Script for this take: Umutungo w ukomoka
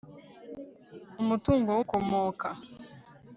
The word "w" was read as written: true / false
true